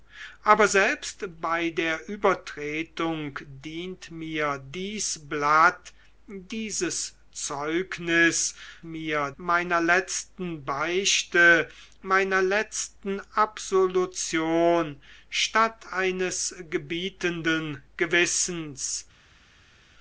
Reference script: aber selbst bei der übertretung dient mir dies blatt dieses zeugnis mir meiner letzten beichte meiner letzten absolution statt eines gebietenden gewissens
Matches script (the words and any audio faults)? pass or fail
pass